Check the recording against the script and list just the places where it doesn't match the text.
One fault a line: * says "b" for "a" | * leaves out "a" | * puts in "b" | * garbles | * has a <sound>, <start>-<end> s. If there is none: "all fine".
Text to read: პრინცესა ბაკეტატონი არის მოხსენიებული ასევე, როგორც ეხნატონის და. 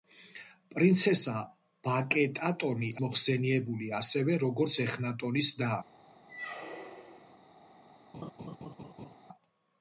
* leaves out "არის"
* has a squeak, 6.3-7.4 s
* has a laugh, 8.1-9.2 s